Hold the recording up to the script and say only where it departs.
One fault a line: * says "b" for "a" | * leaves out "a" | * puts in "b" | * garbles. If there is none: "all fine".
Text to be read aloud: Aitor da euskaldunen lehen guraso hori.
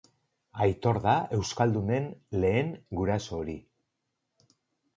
all fine